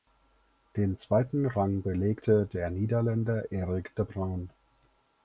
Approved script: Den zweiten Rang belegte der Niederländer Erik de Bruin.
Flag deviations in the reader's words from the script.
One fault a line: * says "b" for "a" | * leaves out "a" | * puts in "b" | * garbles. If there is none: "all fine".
all fine